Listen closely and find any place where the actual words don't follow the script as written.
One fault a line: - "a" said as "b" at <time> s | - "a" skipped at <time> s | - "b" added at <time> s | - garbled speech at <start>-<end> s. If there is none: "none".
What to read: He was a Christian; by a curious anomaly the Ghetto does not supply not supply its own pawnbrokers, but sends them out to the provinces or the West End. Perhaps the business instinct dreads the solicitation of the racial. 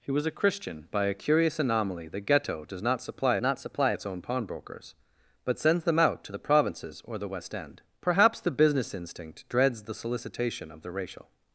none